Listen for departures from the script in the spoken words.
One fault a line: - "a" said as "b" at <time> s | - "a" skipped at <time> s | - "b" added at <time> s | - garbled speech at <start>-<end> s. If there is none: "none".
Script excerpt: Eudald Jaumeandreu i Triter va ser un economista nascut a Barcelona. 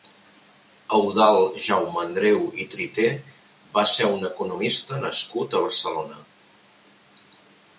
none